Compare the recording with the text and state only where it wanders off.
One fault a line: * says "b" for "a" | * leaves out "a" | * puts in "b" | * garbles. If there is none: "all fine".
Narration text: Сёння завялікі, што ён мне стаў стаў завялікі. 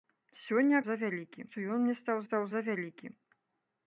all fine